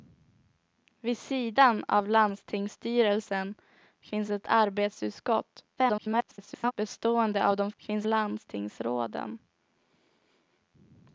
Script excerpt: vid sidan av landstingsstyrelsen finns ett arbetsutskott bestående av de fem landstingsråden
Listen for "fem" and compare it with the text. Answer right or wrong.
wrong